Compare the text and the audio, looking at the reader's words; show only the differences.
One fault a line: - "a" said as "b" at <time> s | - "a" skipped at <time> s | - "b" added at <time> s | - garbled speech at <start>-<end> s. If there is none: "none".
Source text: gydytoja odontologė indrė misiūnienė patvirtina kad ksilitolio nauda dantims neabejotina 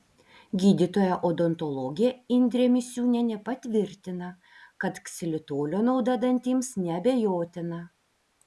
none